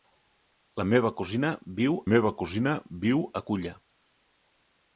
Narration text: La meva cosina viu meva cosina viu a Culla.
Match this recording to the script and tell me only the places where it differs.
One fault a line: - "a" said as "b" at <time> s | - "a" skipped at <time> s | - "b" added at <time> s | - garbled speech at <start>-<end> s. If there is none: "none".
none